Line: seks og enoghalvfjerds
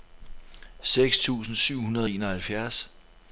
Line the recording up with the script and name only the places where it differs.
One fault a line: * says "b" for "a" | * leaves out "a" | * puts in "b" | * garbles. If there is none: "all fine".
* puts in "tusind syv hundrede"